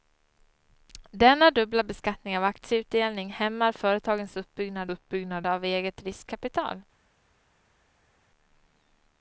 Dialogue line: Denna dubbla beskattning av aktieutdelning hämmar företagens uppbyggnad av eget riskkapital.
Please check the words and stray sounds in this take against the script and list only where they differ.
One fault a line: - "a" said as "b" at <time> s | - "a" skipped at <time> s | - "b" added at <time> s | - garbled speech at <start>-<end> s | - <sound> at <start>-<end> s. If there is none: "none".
- "uppbyggnad" added at 4.9 s